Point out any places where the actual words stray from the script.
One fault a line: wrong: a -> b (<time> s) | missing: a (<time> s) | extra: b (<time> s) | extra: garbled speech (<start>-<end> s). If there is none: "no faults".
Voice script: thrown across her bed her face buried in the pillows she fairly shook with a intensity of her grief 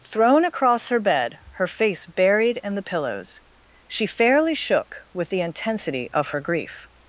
wrong: a -> the (5.3 s)